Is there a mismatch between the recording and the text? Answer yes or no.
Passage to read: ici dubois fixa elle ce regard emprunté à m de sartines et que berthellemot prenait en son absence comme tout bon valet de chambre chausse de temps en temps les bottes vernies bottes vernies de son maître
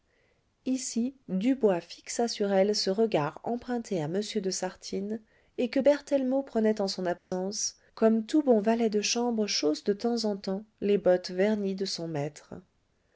yes